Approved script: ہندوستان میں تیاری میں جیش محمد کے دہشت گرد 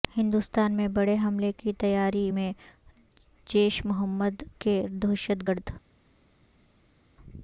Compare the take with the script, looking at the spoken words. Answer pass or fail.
fail